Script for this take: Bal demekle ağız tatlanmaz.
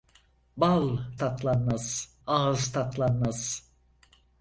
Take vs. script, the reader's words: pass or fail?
fail